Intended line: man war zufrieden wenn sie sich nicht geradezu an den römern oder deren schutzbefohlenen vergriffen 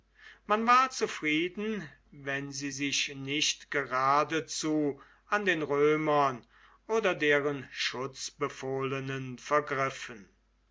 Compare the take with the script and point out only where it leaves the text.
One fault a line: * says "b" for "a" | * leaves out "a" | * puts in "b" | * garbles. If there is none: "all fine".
all fine